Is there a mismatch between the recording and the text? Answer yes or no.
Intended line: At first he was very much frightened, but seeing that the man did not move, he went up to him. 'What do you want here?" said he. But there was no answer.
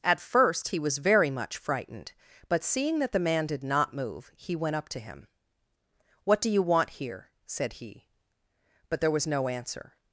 no